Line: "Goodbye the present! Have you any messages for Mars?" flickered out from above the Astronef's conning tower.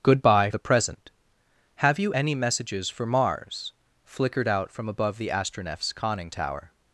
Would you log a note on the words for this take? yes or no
no